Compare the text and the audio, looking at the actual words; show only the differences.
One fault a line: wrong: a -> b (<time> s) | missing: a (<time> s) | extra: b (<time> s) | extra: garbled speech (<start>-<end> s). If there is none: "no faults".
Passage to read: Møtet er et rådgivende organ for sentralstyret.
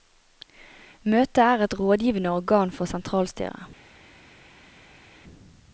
no faults